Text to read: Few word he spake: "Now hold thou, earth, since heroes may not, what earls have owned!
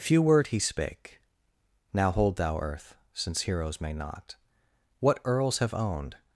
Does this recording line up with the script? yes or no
yes